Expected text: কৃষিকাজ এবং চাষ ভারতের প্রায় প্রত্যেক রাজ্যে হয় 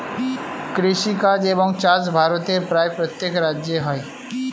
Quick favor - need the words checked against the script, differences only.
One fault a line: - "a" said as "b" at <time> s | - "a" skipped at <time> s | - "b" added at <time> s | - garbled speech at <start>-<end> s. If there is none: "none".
none